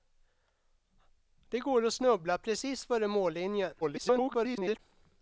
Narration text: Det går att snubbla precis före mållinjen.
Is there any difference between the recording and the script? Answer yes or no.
yes